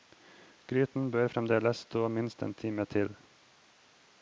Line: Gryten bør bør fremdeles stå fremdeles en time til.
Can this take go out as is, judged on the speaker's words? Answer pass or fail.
fail